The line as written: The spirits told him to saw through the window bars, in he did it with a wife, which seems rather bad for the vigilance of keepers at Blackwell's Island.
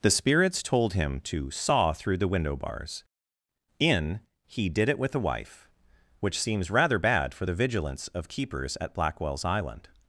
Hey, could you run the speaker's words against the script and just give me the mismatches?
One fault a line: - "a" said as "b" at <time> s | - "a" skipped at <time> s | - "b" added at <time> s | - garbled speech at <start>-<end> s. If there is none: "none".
none